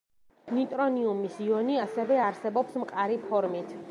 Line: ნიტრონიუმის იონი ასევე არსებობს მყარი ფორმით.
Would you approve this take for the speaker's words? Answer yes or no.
yes